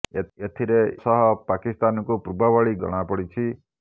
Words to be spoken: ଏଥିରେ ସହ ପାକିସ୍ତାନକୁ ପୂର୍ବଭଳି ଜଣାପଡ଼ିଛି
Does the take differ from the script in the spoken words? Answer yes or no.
no